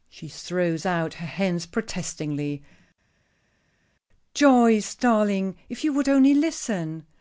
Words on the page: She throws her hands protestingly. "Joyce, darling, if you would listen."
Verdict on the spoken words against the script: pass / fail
fail